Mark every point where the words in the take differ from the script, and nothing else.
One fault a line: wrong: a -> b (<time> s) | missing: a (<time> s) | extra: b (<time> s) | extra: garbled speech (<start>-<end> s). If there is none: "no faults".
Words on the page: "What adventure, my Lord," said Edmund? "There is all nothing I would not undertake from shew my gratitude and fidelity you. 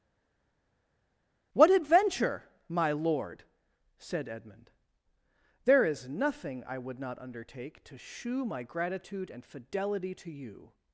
missing: all (6.1 s)
wrong: from -> to (7.8 s)
extra: to (10.1 s)